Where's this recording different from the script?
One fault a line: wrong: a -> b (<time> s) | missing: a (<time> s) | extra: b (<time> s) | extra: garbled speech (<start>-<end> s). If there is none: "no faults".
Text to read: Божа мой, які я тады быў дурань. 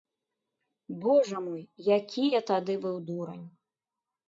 no faults